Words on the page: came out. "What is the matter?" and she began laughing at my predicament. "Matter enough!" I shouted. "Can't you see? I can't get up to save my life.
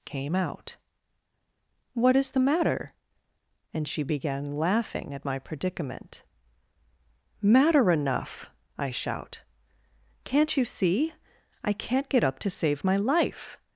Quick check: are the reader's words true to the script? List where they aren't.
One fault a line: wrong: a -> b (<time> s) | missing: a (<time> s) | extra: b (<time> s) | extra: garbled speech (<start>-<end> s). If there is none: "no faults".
wrong: shouted -> shout (8.9 s)